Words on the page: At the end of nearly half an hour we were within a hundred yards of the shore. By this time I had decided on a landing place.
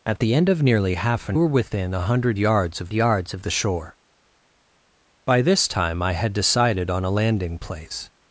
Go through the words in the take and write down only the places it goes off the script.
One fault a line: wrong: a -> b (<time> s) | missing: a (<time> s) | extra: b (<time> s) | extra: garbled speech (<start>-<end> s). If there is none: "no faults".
missing: hour we (1.4 s)
extra: yards of (2.9 s)